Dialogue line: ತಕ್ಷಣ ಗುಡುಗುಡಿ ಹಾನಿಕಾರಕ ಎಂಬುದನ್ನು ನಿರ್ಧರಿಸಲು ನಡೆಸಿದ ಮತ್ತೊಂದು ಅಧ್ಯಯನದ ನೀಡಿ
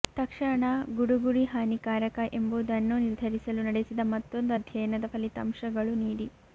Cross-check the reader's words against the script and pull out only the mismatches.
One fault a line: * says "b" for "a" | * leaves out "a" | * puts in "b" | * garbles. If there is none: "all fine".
* puts in "ಫಲಿತಾಂಶಗಳು"